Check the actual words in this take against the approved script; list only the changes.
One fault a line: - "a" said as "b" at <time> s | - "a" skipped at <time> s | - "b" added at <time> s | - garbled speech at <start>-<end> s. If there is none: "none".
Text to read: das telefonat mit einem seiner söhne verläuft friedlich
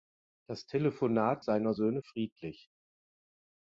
- "mit einem" skipped at 1.4 s
- "verläuft" skipped at 2.0 s